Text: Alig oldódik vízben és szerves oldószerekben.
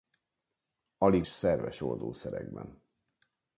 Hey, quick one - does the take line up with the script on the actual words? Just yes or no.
no